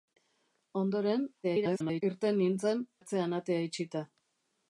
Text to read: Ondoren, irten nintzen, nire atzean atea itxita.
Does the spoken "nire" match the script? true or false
false